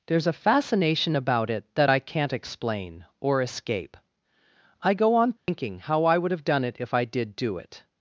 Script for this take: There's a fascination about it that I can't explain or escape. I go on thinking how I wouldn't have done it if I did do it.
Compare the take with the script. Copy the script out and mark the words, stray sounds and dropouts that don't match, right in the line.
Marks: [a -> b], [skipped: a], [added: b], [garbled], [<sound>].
There's a fascination about it that I can't explain or escape. I go on thinking [dropout] how I [wouldn't -> would] have done it if I did do it.